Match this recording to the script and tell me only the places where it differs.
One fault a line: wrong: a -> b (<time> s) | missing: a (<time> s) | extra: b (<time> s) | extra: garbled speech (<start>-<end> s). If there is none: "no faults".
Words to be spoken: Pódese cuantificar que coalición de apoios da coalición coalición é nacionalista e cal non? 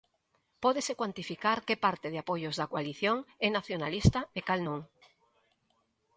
wrong: coalición -> parte (1.9 s)
missing: coalición (3.2 s)